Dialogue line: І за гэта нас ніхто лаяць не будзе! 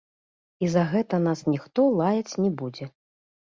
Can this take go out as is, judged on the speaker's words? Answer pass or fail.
pass